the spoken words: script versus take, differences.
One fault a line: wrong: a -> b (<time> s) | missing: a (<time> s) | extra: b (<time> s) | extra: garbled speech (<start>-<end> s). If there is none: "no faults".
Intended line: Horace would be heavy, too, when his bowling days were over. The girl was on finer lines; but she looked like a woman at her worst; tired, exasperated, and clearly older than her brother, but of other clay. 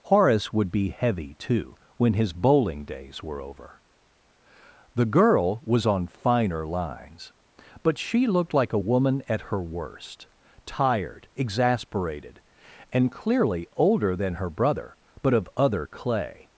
no faults